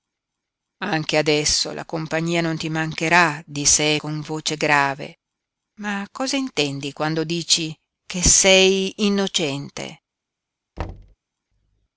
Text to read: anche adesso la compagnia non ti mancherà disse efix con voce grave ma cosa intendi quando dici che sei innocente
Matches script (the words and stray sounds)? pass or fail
fail